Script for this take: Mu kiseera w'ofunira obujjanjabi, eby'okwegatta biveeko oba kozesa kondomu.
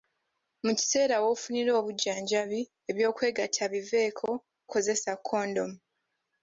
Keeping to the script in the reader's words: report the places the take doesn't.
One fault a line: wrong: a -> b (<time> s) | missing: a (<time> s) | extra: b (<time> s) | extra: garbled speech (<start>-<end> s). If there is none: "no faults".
missing: oba (4.3 s)